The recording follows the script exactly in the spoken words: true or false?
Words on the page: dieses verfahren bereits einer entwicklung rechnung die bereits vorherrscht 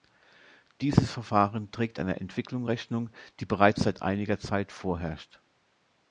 false